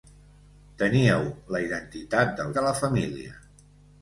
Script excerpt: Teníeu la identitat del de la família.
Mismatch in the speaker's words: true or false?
false